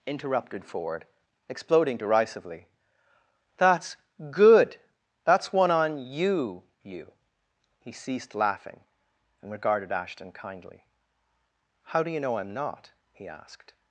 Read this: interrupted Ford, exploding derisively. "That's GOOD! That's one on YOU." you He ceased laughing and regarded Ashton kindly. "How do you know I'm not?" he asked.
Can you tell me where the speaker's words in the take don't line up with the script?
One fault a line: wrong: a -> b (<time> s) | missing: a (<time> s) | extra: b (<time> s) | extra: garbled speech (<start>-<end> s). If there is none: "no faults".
no faults